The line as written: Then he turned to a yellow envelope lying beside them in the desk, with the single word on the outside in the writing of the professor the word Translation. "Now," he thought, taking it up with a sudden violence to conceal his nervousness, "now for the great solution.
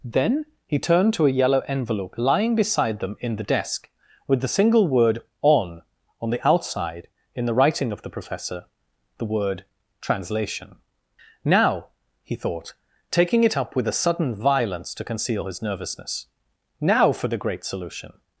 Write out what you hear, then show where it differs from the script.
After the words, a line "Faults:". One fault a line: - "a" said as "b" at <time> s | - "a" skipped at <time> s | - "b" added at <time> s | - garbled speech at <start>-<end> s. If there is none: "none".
Then he turned to a yellow envelope lying beside them in the desk, with the single word on on the outside in the writing of the professor the word Translation. "Now," he thought, taking it up with a sudden violence to conceal his nervousness, "now for the great solution.
Faults:
- "on" added at 6.2 s